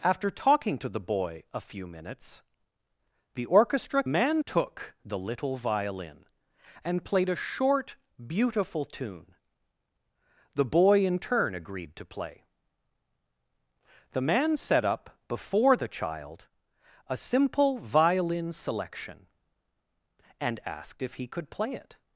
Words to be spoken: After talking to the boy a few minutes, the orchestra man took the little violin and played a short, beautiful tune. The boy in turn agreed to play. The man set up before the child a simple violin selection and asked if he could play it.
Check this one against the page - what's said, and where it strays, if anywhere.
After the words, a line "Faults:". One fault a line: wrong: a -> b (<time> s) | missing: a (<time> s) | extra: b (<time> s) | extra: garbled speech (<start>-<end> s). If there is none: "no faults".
After talking to the boy a few minutes, the orchestra man took the little violin and played a short, beautiful tune. The boy in turn agreed to play. The man set up before the child a simple violin selection and asked if he could play it.
Faults:
no faults